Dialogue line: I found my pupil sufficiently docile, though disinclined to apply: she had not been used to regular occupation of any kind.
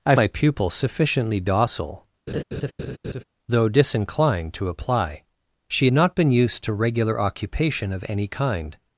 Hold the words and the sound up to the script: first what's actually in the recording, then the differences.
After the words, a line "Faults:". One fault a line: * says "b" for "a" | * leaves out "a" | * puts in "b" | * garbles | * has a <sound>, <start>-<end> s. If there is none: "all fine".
I my pupil sufficiently docile, though disinclined to apply: she not been used to regular occupation of any kind.
Faults:
* leaves out "found"
* has a laugh, 2.3-3.2 s
* leaves out "had"